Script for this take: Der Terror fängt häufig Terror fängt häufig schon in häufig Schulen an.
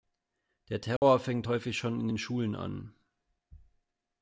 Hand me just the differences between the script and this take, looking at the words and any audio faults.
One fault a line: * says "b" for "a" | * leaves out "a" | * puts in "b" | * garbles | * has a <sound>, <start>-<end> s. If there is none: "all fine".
* has a dropout, 1.0-1.0 s
* leaves out "Terror fängt häufig"
* says "den" for "häufig"